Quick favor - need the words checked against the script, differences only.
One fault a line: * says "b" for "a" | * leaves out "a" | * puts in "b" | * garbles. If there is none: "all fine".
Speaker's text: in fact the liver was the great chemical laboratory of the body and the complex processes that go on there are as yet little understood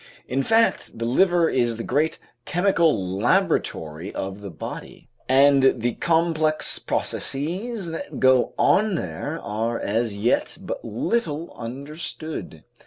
* says "is" for "was"
* puts in "but"